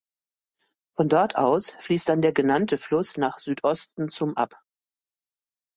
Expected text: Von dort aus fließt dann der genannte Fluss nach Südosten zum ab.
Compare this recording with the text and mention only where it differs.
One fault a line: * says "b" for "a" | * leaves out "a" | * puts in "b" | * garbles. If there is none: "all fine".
all fine